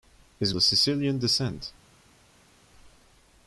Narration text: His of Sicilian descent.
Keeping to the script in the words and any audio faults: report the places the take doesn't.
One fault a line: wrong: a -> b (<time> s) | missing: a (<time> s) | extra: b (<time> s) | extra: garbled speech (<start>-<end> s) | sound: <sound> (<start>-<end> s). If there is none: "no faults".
no faults